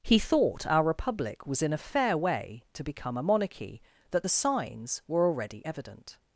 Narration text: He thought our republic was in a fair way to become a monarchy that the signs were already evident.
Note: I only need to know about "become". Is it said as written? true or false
true